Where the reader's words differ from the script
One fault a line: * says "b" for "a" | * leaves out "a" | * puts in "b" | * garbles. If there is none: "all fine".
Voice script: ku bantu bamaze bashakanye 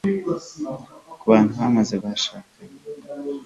all fine